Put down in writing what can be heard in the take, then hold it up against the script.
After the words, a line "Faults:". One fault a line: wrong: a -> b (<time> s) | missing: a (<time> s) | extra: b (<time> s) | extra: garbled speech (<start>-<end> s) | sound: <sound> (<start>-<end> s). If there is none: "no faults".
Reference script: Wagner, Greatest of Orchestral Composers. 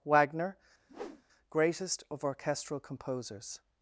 Wagner, Greatest of Orchestral Composers.
Faults:
sound: whoosh (0.9-1.2 s)